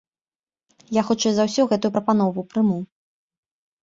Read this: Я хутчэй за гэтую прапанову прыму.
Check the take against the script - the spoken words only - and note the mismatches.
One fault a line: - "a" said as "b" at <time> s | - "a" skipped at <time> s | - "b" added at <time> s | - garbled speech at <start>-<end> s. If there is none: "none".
- "ўсё" added at 1.5 s